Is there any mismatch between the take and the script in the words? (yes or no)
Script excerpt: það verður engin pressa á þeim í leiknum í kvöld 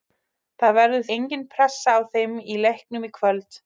no